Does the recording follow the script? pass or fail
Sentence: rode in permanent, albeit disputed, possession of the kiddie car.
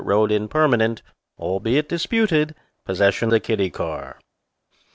fail